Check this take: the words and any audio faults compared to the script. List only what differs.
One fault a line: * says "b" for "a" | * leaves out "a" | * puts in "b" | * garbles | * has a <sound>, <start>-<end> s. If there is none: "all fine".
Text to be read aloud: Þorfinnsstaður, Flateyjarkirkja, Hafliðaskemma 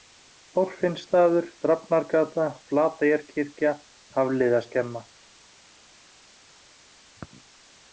* puts in "Drafnargata"